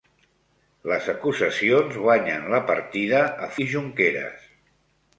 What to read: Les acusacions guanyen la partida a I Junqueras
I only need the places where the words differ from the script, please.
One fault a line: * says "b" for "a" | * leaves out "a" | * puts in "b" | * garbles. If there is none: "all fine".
all fine